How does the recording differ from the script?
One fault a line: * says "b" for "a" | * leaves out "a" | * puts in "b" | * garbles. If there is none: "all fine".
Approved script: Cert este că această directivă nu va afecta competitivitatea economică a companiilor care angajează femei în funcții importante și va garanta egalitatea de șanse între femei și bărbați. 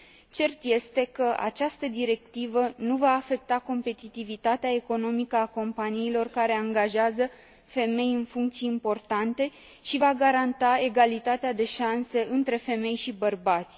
all fine